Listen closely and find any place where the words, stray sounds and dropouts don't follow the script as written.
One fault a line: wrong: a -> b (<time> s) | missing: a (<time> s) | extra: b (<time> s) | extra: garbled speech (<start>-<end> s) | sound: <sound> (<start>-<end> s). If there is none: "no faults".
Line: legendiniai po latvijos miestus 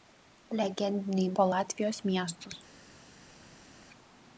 no faults